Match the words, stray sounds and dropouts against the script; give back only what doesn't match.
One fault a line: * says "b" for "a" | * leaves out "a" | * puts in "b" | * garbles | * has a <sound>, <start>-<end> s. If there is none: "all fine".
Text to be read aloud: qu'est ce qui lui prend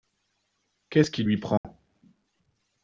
* has a dropout, 1.6-1.6 s